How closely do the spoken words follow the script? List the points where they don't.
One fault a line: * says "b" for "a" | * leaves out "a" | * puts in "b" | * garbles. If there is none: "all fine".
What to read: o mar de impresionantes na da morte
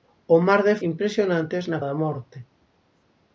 all fine